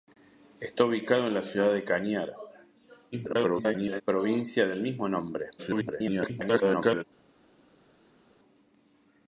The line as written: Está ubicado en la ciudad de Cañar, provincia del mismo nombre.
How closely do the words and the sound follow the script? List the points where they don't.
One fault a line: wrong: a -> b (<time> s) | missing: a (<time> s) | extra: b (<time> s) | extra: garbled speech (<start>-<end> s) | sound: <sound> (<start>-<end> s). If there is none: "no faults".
extra: garbled speech (3.1-4.0 s)
extra: garbled speech (5.6-7.0 s)